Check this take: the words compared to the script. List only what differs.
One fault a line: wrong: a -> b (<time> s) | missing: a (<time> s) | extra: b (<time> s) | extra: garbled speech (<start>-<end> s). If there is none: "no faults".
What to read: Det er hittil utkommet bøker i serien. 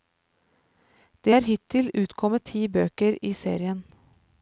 extra: ti (2.5 s)